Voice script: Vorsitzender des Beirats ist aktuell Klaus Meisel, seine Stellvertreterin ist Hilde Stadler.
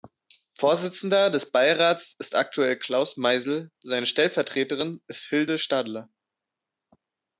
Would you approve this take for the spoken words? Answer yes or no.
yes